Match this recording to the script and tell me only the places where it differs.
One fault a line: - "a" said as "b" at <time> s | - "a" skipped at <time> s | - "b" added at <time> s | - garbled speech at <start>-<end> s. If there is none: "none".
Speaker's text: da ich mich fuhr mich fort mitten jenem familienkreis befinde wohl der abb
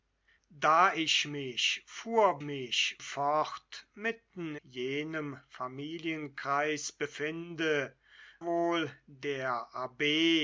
none